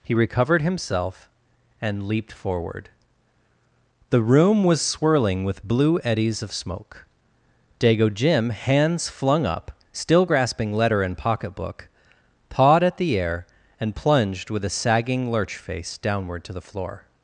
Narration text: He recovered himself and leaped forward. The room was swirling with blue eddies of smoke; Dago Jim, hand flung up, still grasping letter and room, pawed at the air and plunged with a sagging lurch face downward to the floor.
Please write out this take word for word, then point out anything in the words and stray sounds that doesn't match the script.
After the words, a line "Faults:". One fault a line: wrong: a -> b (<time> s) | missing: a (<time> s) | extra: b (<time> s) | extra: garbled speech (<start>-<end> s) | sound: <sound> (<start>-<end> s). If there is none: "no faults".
He recovered himself and leaped forward. The room was swirling with blue eddies of smoke; Dago Jim, hands flung up, still grasping letter and pocketbook, pawed at the air and plunged with a sagging lurch face downward to the floor.
Faults:
wrong: hand -> hands (8.5 s)
wrong: room -> pocketbook (11.2 s)